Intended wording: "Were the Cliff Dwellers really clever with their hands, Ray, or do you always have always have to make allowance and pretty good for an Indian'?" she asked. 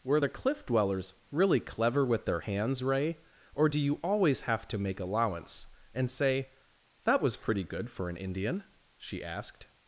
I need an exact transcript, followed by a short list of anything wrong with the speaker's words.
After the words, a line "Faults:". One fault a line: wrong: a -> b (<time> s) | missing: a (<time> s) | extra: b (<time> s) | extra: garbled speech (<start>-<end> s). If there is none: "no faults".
"Were the Cliff Dwellers really clever with their hands, Ray, or do you always have to make allowance and say, 'That was pretty good for an Indian'?" she asked.
Faults:
missing: always have (4.7 s)
extra: say That was (6.1 s)